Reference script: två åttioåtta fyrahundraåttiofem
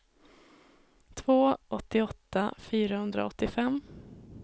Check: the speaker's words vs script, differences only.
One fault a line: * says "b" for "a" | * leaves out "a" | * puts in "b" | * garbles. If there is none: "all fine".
all fine